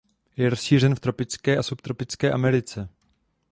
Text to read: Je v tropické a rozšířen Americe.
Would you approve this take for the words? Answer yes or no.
no